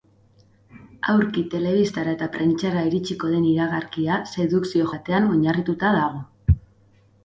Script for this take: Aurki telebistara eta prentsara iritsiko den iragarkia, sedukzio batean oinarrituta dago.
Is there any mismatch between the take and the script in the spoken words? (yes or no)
no